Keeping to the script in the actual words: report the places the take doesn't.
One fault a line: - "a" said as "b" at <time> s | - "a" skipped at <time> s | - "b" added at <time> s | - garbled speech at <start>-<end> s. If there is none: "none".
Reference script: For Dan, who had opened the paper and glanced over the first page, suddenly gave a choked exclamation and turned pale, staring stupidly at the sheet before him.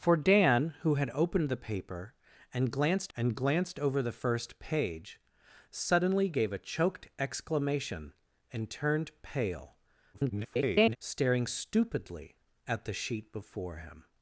- "and glanced" added at 3.1 s
- garbled speech at 10.1-11.0 s